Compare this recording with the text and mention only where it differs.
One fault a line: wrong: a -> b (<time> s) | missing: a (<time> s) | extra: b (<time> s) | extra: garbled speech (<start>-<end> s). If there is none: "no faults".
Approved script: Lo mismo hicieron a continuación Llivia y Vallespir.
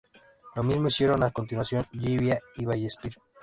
no faults